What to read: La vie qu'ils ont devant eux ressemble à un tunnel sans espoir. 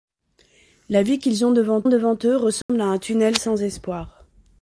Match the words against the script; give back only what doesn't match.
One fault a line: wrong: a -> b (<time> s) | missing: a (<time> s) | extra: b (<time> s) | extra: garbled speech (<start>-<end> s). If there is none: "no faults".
extra: devant (1.9 s)